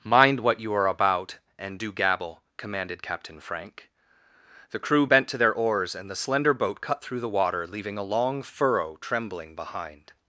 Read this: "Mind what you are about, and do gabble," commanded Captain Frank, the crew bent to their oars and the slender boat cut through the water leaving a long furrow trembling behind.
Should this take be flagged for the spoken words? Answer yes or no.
no